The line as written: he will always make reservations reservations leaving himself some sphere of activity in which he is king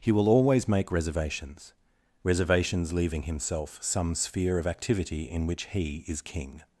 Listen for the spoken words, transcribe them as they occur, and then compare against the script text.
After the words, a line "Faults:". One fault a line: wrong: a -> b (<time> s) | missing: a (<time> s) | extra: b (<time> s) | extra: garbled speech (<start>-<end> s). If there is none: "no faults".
he will always make reservations reservations leaving himself some sphere of activity in which he is king
Faults:
no faults